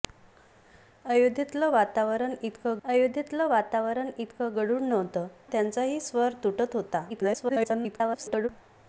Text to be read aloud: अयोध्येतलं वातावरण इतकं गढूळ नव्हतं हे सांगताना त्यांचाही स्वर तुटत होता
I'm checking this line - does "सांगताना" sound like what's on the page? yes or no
no